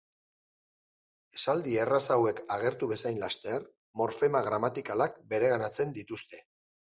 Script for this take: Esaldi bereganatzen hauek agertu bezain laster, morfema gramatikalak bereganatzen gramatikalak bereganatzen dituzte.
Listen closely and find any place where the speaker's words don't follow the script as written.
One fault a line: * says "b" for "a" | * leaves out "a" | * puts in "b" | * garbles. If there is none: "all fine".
* says "erraz" for "bereganatzen"
* leaves out "gramatikalak bereganatzen"